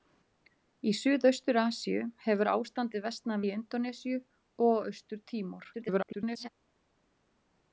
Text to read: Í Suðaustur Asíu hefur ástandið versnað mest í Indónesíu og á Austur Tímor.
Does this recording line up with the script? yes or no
no